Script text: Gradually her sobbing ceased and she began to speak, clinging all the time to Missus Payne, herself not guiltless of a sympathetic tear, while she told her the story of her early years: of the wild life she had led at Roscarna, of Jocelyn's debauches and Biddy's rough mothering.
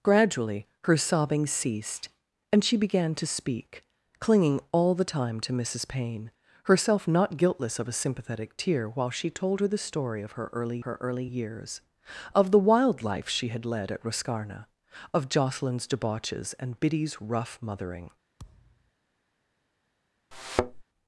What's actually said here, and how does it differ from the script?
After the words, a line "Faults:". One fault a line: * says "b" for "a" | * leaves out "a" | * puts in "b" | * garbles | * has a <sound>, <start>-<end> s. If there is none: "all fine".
Gradually her sobbing ceased and she began to speak, clinging all the time to Missus Payne, herself not guiltless of a sympathetic tear, while she told her the story of her early her early years: of the wild life she had led at Roscarna, of Jocelyn's debauches and Biddy's rough mothering.
Faults:
* puts in "her early"
* has a thud, 18.4-18.9 s
* has a thud, 20.3-20.8 s